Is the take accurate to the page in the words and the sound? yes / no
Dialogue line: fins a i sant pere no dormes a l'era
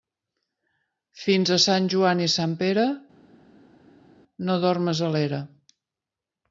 no